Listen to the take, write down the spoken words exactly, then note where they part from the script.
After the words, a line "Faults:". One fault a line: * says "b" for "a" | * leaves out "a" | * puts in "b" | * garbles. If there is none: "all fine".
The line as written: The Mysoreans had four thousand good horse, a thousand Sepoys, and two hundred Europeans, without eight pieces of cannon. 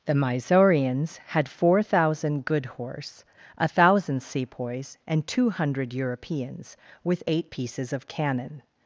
The Mysoreans had four thousand good horse, a thousand Sepoys, and two hundred Europeans, with eight pieces of cannon.
Faults:
* says "with" for "without"